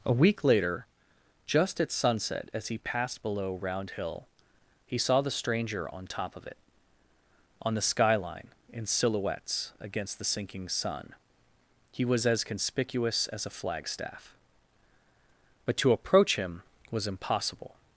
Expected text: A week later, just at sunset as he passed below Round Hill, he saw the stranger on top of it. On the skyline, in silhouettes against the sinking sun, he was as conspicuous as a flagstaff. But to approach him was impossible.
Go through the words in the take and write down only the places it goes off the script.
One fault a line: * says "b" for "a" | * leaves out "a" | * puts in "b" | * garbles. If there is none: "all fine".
all fine